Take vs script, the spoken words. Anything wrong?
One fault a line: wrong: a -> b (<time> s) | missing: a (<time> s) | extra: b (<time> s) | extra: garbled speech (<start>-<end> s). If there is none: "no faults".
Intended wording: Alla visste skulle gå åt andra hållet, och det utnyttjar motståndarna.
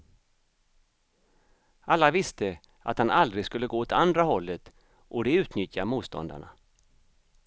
extra: att han aldrig (2.8 s)